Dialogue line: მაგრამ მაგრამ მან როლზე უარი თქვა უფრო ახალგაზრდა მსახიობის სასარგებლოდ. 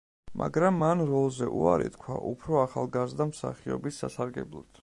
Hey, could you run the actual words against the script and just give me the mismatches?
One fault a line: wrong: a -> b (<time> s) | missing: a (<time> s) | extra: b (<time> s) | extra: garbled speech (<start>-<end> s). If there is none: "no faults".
missing: მაგრამ (0.8 s)